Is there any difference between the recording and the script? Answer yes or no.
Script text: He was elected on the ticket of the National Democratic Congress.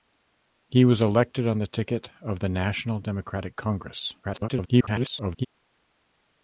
yes